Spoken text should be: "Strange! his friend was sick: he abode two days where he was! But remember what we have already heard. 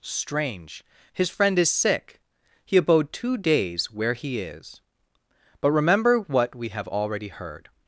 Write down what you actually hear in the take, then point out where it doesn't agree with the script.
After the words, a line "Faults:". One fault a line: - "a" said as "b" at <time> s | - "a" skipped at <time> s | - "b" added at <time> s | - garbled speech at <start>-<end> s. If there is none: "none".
"Strange! his friend is sick: he abode two days where he is! But remember what we have already heard.
Faults:
- "was" said as "is" at 1.6 s
- "was" said as "is" at 4.4 s